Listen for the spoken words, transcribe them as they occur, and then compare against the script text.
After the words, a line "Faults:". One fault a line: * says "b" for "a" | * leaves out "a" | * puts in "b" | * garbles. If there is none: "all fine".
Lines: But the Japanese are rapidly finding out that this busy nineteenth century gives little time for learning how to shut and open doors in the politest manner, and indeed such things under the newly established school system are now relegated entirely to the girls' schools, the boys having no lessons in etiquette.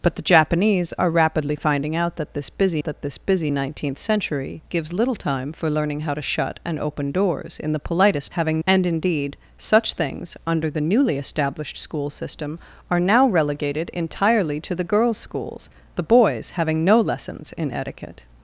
But the Japanese are rapidly finding out that this busy that this busy nineteenth century gives little time for learning how to shut and open doors in the politest having, and indeed such things under the newly established school system are now relegated entirely to the girls' schools, the boys having no lessons in etiquette.
Faults:
* puts in "that this busy"
* says "having" for "manner"